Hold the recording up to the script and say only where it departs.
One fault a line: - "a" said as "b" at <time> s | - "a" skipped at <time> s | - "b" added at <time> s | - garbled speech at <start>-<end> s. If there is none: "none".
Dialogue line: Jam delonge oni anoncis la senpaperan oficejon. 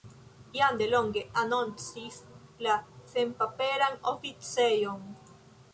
- "oni" skipped at 1.2 s